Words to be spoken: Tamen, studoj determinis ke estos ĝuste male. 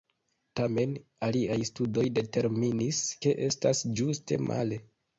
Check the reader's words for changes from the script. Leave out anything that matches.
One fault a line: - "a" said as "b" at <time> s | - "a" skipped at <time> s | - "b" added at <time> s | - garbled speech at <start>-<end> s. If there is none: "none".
- "aliaj" added at 1.3 s
- "estos" said as "estas" at 3.5 s